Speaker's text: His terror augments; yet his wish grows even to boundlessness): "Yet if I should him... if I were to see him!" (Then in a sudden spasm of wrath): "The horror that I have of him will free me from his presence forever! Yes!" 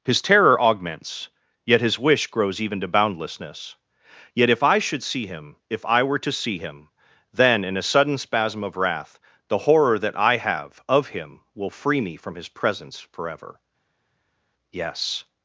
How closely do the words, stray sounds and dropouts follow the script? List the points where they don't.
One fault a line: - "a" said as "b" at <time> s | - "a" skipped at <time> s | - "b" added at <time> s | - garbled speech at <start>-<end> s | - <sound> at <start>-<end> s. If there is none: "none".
- "see" added at 5.0 s